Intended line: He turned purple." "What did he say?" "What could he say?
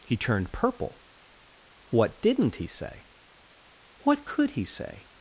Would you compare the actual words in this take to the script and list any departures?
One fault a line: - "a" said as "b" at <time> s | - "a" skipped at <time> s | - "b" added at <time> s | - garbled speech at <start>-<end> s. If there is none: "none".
- "did" said as "didn't" at 2.2 s